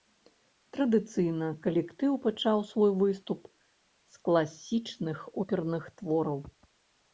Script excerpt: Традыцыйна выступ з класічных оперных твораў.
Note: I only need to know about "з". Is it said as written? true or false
true